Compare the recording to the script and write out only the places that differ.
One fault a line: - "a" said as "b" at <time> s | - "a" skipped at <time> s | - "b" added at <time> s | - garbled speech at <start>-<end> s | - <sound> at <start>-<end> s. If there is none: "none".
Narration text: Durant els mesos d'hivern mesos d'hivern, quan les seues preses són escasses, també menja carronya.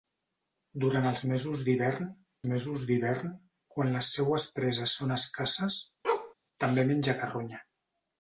- bark at 6.0-6.3 s